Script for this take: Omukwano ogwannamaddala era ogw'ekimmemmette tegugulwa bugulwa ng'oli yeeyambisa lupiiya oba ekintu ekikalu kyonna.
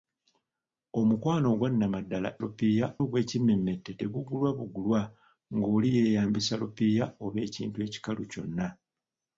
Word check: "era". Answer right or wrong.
wrong